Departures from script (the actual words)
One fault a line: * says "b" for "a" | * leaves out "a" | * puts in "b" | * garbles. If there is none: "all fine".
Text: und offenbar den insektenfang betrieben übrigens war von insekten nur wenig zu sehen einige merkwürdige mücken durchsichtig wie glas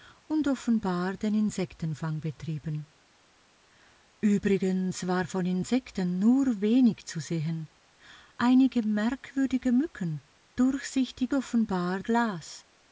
* says "offenbar" for "wie"